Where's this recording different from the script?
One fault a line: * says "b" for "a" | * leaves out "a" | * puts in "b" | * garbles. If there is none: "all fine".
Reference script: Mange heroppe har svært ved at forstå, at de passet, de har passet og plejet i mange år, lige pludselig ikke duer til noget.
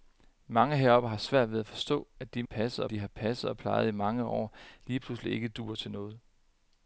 all fine